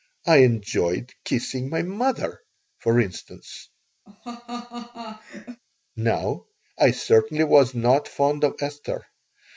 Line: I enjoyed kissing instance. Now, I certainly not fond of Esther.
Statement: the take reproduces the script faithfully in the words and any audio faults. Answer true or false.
false